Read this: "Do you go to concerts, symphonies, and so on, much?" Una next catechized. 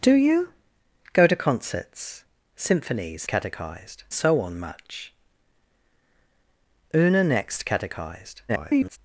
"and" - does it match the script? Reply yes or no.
no